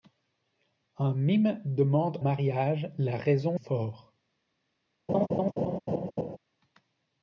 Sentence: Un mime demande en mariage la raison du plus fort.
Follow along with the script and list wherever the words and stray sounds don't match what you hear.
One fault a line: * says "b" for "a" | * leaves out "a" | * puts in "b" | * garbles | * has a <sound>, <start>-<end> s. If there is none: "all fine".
* leaves out "en"
* leaves out "du plus"
* has a laugh, 5.1-6.4 s